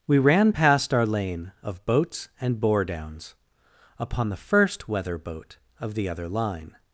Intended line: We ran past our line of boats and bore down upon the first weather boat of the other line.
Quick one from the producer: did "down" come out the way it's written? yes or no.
no